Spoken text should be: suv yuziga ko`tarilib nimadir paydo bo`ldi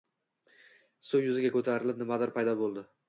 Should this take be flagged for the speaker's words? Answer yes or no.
no